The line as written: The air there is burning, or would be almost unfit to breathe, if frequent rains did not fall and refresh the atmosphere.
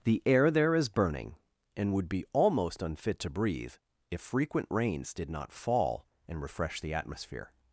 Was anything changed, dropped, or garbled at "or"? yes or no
yes